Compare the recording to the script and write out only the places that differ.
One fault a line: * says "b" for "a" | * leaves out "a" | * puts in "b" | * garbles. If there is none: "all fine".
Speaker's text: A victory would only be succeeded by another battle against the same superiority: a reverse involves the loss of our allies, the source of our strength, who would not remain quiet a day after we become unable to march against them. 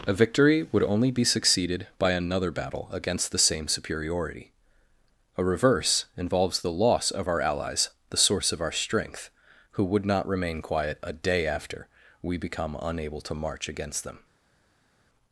all fine